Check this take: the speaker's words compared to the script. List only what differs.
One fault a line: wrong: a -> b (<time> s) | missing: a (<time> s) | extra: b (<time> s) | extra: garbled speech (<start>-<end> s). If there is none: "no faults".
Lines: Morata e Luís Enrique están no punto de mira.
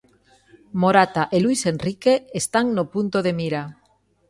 no faults